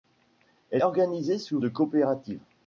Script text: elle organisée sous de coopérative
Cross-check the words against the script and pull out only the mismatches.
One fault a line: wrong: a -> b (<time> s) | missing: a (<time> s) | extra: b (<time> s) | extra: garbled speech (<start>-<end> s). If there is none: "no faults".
no faults